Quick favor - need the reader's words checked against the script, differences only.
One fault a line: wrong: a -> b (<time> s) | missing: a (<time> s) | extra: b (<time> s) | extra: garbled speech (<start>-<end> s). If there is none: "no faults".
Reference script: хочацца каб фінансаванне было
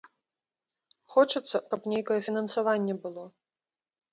extra: нейкае (1.9 s)